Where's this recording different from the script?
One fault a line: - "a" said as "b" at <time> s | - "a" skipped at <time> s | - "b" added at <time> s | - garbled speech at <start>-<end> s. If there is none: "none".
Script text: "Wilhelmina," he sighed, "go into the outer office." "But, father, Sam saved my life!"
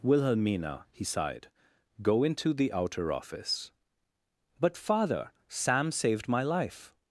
none